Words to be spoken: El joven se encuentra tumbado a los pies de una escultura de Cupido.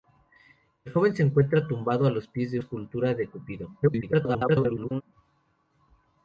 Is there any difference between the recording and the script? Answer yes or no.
yes